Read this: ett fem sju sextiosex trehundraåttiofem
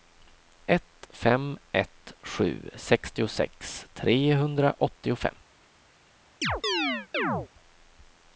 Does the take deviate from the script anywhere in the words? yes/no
yes